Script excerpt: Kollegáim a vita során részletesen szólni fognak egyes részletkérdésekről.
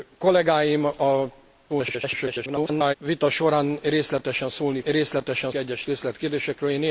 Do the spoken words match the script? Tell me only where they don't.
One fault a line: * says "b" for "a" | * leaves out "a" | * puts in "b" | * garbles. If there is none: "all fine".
* garbles
* says "részletesen" for "fognak"